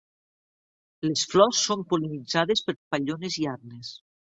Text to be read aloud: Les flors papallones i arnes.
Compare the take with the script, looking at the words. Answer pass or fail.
fail